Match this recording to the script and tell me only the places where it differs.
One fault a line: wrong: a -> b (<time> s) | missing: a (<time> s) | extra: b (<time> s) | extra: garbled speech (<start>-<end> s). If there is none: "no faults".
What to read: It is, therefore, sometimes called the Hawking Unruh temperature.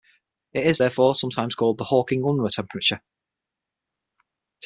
no faults